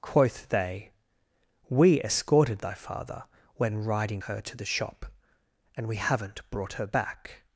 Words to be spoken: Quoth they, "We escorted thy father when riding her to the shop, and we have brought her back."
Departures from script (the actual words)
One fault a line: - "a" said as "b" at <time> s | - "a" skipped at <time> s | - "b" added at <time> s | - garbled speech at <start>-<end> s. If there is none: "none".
- "have" said as "haven't" at 6.0 s